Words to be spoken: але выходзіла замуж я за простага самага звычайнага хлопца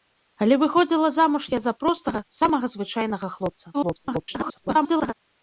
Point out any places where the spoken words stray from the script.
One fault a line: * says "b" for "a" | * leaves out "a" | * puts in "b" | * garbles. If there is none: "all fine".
* garbles